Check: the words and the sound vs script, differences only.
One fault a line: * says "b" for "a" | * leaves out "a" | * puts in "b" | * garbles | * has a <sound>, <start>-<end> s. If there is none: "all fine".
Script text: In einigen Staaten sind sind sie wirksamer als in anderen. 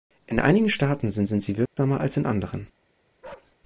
* has a dropout, 1.7-1.8 s
* has a bark, 3.2-3.6 s